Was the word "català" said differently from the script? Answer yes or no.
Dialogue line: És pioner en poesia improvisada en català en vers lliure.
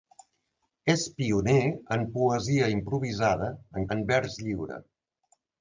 yes